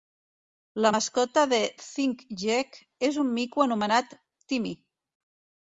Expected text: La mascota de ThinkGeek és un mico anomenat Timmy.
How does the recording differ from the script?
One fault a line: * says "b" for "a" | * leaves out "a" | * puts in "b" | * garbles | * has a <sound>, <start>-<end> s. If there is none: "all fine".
all fine